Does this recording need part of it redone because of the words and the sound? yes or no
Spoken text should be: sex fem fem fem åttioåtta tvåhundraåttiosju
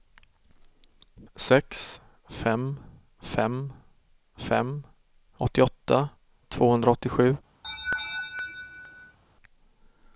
yes